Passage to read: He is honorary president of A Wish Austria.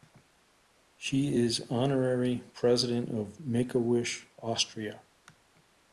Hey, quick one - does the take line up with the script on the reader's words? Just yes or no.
no